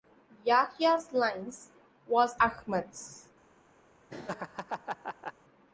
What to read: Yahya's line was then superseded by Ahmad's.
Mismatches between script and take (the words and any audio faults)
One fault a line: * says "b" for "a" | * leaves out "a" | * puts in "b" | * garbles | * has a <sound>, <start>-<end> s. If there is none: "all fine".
* leaves out "then superseded by"
* has a laugh, 4.1-5.3 s